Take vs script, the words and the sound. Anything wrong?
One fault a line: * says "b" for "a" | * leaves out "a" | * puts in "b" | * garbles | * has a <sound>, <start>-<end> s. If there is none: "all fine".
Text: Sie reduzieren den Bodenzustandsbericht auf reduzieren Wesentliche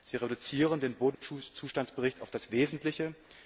* has a dropout, 1.1-1.2 s
* says "das" for "reduzieren"